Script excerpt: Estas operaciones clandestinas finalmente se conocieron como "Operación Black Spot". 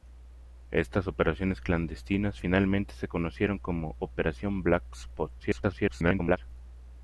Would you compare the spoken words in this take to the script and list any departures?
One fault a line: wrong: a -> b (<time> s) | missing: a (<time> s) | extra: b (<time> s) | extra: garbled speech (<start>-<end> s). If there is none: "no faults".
extra: garbled speech (5.4-6.4 s)